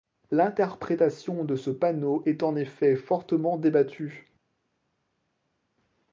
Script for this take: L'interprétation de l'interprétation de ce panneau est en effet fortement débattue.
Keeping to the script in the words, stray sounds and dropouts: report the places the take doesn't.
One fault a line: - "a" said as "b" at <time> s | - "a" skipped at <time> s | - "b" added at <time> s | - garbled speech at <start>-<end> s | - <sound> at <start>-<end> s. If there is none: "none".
- "l'interprétation de" skipped at 1.6 s